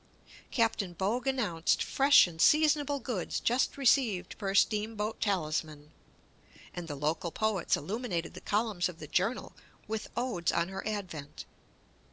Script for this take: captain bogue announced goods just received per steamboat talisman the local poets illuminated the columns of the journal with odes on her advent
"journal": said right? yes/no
yes